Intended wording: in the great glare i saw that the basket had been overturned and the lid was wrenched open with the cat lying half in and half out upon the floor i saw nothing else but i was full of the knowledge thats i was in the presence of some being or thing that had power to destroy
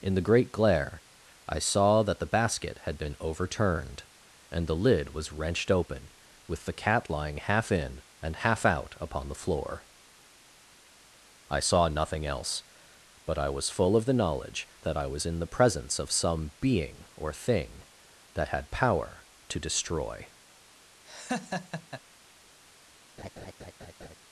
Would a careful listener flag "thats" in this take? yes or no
yes